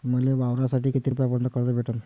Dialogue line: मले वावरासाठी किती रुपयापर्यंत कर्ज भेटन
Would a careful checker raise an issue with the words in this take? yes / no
no